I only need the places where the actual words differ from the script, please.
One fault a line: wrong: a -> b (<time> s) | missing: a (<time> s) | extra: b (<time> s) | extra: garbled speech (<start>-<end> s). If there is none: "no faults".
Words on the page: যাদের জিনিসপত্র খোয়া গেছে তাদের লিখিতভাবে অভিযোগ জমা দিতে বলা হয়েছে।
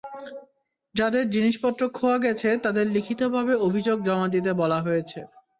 no faults